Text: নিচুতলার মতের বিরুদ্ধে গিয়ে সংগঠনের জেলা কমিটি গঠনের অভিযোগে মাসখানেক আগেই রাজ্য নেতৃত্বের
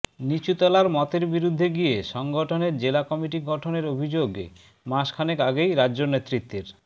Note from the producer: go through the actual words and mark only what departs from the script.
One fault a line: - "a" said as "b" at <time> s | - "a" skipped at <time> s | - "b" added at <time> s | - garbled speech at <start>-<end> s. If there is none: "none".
none